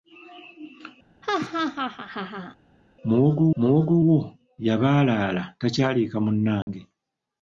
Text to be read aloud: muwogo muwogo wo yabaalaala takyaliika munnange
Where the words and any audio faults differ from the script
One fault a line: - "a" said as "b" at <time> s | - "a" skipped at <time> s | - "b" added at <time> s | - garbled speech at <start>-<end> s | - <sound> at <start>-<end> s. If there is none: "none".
- laugh at 1.2-2.6 s
- dropout at 6.6-6.7 s